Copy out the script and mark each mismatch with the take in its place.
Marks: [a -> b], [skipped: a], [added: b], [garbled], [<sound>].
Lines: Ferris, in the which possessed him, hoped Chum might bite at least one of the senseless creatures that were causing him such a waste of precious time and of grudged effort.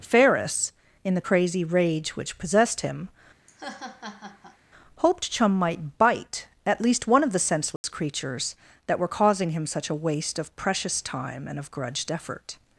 Ferris, in the [added: crazy rage] which possessed him, [laugh] hoped Chum might bite at least one of the senseless [dropout] creatures that were causing him such a waste of precious time and of grudged effort.